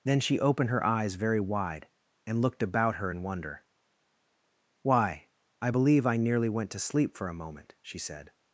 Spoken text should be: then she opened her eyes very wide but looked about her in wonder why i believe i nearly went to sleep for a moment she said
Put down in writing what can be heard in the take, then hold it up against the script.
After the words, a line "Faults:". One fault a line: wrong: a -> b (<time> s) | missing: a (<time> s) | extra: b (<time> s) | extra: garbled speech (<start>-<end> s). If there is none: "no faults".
then she opened her eyes very wide and looked about her in wonder why i believe i nearly went to sleep for a moment she said
Faults:
wrong: but -> and (2.2 s)